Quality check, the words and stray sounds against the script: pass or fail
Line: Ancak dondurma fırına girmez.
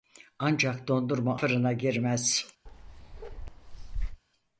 fail